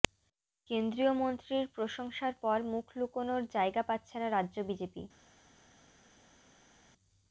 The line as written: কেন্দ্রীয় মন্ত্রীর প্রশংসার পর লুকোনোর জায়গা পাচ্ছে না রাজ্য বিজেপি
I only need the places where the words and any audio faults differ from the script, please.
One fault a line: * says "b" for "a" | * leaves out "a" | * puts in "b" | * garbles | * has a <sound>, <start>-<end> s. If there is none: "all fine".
* puts in "মুখ"